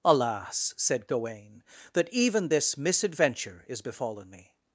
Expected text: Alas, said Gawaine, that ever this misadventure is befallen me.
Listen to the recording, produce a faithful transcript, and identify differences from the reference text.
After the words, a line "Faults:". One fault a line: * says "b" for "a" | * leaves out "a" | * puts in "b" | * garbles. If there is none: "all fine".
Alas, said Gawaine, that even this misadventure is befallen me.
Faults:
* says "even" for "ever"